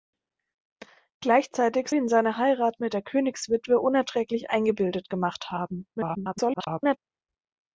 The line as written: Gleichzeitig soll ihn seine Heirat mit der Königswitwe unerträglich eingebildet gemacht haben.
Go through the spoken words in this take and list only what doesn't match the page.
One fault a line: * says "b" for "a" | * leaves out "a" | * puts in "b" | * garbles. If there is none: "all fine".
* leaves out "soll"
* garbles